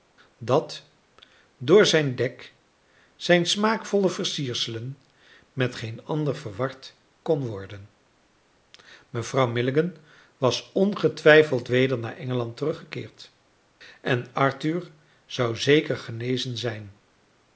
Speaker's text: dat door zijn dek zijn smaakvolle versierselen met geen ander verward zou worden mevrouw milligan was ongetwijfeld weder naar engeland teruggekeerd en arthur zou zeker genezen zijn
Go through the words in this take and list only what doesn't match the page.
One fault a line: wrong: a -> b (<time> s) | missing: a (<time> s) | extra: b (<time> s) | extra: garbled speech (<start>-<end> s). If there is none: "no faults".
wrong: zou -> kon (7.2 s)